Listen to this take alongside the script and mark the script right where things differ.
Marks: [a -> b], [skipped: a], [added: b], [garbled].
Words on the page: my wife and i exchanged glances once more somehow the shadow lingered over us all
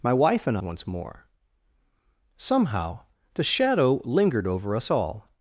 my wife and [skipped: i exchanged glances] once more somehow the shadow lingered over us all